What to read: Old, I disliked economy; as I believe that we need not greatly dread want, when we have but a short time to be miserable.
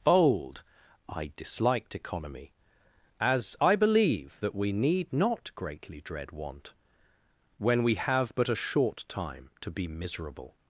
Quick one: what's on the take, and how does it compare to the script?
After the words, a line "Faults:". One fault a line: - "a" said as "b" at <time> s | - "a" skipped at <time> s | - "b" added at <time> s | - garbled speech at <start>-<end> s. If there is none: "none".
Bold, I disliked economy; as I believe that we need not greatly dread want, when we have but a short time to be miserable.
Faults:
- "Old" said as "Bold" at 0.0 s